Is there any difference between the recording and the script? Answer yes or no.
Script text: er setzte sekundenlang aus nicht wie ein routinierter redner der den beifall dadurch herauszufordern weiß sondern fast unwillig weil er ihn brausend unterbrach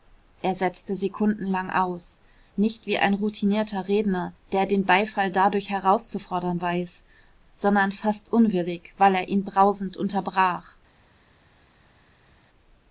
no